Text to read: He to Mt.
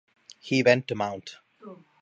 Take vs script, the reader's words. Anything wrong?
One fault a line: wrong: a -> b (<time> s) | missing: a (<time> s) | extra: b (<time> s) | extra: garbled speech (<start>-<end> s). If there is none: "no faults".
extra: went (0.6 s)